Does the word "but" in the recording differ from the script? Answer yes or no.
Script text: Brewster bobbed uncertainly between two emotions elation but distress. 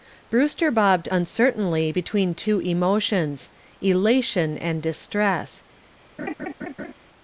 yes